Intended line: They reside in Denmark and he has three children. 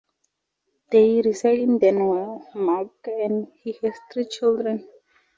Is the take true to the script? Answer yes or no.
yes